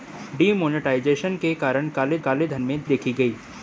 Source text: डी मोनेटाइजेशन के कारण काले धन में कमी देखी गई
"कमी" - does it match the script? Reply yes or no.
no